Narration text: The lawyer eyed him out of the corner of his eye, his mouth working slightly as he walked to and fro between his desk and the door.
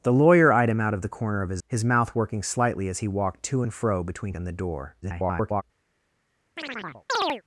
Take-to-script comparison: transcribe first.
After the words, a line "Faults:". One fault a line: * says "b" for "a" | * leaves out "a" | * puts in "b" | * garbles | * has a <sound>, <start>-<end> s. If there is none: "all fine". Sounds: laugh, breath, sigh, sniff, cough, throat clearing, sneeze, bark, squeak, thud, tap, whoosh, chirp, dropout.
The lawyer eyed him out of the corner of his his mouth working slightly as he walked to and fro between and the door. [garbled]
Faults:
* leaves out "eye"
* leaves out "his desk"
* garbles
* has a chirp, 6.6-7.4 s